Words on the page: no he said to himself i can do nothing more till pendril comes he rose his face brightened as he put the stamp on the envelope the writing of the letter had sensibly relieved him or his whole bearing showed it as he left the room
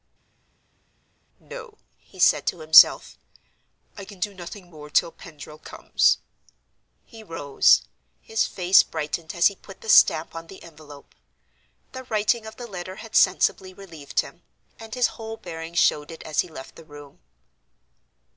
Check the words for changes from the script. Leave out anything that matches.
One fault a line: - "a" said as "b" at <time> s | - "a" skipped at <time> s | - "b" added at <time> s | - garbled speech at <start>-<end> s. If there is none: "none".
- "or" said as "and" at 14.8 s